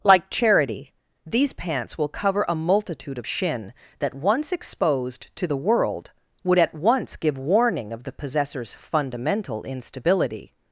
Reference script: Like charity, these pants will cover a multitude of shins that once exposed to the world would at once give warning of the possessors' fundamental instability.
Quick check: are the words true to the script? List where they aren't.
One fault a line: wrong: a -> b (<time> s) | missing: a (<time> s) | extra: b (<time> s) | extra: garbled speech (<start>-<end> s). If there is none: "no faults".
wrong: shins -> shin (3.2 s)